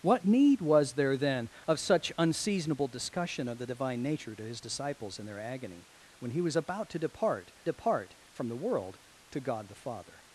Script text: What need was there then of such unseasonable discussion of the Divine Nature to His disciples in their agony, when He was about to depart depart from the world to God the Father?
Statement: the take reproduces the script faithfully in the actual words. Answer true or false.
true